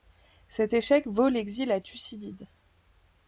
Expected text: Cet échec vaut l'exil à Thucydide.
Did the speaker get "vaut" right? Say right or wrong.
right